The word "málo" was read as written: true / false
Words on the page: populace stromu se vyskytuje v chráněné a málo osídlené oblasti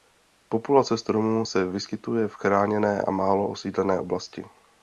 true